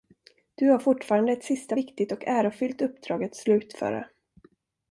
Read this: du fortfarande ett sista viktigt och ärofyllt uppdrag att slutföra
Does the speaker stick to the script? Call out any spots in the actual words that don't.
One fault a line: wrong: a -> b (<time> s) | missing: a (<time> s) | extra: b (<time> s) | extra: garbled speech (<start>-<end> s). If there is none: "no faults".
extra: har (0.7 s)